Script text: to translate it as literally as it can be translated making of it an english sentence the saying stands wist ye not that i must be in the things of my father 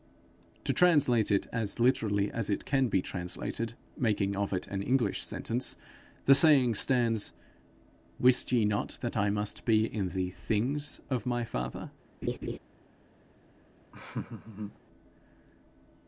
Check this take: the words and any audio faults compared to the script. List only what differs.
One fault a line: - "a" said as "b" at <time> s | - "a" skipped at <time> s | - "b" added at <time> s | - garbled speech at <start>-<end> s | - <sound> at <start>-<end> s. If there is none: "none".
- laugh at 12.2-12.6 s
- laugh at 13.9-14.8 s